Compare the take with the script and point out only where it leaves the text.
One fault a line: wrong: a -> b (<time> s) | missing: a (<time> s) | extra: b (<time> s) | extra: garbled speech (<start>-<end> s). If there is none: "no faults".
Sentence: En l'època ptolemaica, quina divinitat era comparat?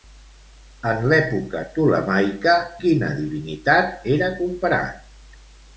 no faults